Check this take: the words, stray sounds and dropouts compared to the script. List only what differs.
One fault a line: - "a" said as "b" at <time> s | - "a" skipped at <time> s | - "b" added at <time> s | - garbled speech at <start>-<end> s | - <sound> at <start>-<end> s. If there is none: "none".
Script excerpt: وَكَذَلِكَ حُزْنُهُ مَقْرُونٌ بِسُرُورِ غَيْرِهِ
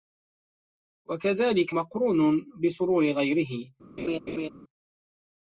- "حُزْنُهُ" skipped at 1.8 s
- laugh at 4.0-4.5 s